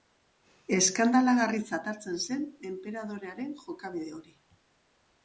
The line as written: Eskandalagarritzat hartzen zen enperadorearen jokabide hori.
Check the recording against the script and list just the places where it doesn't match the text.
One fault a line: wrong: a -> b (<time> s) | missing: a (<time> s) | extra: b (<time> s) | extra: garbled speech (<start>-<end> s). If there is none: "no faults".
no faults